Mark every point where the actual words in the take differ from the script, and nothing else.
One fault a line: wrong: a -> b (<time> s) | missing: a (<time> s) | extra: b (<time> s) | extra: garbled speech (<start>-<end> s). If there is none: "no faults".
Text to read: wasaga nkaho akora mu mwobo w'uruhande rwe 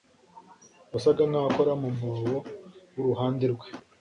no faults